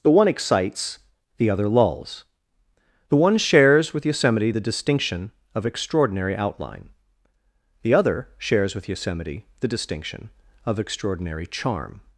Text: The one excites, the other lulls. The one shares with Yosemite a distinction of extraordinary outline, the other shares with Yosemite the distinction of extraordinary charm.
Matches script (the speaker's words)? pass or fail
fail